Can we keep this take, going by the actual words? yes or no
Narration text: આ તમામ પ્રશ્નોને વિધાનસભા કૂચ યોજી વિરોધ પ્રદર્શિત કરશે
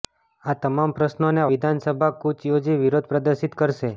yes